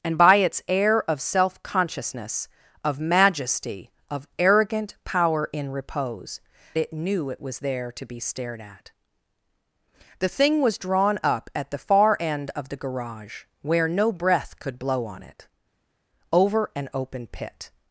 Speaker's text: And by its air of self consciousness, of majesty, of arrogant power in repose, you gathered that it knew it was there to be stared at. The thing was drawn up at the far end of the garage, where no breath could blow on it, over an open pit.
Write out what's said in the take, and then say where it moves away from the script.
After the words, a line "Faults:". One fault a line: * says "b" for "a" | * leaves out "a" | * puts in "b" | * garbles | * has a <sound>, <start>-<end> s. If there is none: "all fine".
And by its air of self consciousness, of majesty, of arrogant power in repose, it knew it was there to be stared at. The thing was drawn up at the far end of the garage, where no breath could blow on it, over an open pit.
Faults:
* leaves out "you gathered that"